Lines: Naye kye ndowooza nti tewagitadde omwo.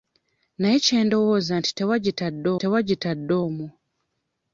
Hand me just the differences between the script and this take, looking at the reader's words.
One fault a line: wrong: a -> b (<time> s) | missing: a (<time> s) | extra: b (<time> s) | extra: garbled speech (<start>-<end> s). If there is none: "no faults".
extra: tewagitadde (2.6 s)